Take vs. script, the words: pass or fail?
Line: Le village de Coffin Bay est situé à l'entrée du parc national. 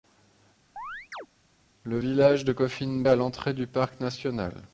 fail